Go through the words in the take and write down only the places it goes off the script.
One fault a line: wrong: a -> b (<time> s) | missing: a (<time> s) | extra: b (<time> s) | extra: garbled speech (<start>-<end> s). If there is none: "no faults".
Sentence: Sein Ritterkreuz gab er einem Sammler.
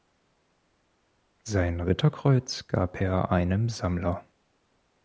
no faults